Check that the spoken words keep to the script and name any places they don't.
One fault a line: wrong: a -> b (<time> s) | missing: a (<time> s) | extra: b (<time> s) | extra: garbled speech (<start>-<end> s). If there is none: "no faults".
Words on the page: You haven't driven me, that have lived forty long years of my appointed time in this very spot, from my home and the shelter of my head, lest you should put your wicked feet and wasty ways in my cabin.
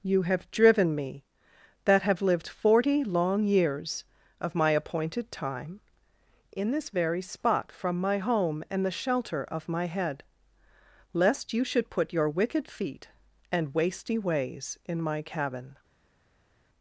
wrong: haven't -> have (0.2 s)